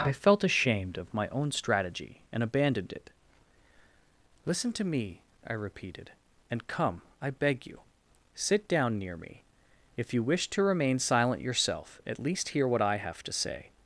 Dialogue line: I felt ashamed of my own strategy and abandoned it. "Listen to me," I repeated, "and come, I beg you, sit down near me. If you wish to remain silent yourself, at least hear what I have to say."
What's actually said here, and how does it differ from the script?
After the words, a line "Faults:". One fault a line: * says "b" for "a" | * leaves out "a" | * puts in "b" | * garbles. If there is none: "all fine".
I felt ashamed of my own strategy and abandoned it. "Listen to me," I repeated, "and come, I beg you, sit down near me. If you wish to remain silent yourself, at least hear what I have to say."
Faults:
all fine